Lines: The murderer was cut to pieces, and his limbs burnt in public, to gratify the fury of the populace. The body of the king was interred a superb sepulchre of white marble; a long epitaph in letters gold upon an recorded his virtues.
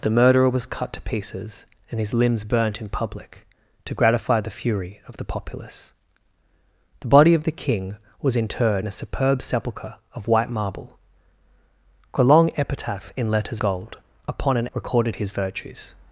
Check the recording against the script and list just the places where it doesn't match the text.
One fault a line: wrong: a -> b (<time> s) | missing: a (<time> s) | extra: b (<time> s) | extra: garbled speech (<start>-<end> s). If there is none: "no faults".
no faults